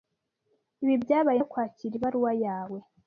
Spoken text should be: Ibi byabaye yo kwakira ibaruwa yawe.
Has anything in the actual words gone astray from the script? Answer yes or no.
no